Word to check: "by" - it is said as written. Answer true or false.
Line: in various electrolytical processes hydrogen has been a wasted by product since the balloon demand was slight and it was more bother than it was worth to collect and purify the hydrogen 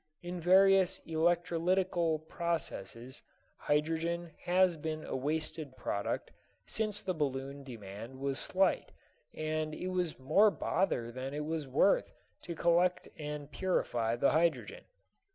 false